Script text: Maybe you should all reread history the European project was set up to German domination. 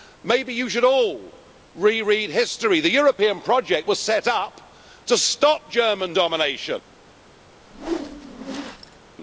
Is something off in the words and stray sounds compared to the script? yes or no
yes